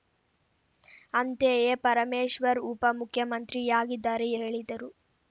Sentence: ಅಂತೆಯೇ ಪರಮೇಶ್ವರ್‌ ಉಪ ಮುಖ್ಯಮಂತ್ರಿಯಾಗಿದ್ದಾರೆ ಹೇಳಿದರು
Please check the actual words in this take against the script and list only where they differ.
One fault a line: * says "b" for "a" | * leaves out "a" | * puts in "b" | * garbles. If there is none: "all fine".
all fine